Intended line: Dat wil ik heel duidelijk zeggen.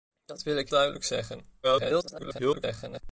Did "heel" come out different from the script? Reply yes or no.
yes